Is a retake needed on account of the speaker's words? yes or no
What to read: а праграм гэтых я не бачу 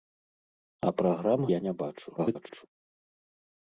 yes